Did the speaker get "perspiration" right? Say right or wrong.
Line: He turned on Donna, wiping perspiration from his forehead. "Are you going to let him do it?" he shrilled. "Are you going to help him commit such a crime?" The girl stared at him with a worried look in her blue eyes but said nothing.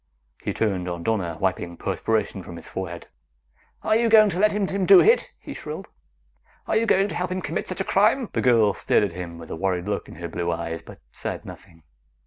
right